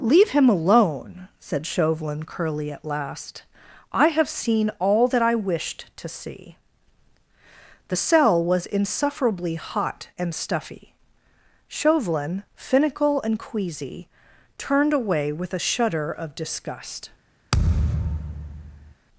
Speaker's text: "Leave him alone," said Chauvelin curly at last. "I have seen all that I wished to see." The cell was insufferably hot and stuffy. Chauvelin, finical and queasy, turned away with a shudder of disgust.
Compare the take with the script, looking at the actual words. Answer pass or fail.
pass